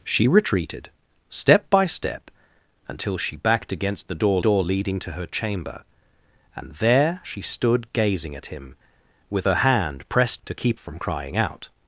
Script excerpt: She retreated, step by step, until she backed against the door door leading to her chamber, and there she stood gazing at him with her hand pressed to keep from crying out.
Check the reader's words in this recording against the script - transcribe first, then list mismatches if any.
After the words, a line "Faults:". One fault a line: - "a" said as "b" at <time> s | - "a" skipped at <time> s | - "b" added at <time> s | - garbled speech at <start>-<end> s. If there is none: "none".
She retreated, step by step, until she backed against the door door leading to her chamber, and there she stood gazing at him with her hand pressed to keep from crying out.
Faults:
none